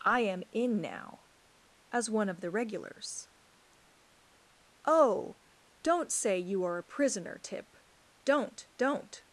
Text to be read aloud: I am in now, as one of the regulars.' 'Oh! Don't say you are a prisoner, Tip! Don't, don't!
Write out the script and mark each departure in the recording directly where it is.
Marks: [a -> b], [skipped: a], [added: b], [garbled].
I am in now, as one of the regulars.' 'Oh! Don't say you are a prisoner, Tip! Don't, don't!